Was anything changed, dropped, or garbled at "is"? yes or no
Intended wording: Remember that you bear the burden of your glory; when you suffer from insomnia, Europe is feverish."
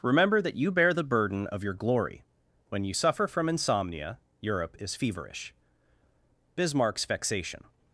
no